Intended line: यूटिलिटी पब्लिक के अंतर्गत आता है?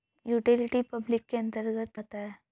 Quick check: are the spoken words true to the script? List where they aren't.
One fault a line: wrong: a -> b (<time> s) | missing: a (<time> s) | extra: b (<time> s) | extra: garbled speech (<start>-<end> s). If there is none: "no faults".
no faults